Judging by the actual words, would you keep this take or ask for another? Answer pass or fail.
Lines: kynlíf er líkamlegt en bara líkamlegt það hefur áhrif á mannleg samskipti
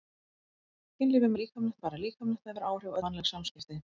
pass